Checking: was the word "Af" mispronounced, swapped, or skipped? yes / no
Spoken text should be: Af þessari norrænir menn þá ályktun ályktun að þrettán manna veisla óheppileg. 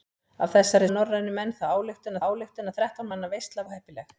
no